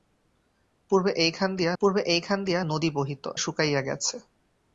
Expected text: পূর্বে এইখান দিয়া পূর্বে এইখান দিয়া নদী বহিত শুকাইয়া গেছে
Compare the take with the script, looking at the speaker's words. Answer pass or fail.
pass